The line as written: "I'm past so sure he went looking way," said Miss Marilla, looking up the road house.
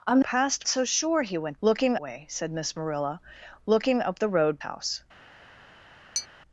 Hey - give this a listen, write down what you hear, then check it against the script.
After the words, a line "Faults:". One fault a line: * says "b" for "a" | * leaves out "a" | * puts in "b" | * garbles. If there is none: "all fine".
"I'm past so sure he went looking way," said Miss Marilla, looking up the road house.
Faults:
all fine